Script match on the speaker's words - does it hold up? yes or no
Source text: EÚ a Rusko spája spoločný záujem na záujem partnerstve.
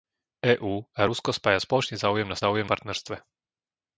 yes